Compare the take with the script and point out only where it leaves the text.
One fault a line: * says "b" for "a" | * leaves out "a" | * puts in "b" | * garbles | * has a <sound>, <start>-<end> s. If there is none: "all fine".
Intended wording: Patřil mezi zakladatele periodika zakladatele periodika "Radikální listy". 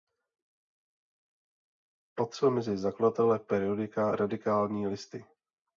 * leaves out "zakladatele periodika"